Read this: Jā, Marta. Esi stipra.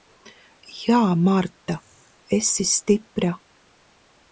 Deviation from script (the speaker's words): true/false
false